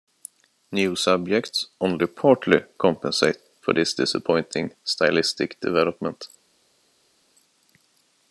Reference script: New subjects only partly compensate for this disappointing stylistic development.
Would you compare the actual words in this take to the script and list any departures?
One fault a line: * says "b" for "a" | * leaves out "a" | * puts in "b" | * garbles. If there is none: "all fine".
all fine